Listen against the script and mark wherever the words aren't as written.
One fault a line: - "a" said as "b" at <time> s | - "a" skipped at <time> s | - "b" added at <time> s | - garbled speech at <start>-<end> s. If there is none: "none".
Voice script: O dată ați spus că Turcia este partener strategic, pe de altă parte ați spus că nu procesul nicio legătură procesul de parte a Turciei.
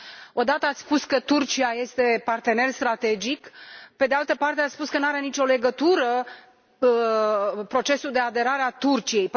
- "procesul" said as "are" at 5.1 s
- "parte" said as "aderare" at 8.2 s